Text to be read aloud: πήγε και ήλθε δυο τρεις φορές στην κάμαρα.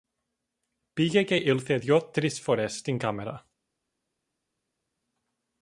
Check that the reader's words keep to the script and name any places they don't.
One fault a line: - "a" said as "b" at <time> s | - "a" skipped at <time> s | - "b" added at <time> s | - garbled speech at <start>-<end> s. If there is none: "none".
none